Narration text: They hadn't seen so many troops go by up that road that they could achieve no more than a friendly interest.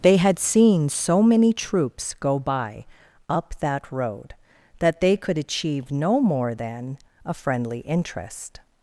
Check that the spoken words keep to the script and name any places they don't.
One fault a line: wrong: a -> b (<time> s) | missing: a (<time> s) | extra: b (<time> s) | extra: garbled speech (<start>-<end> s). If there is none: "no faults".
wrong: hadn't -> had (0.2 s)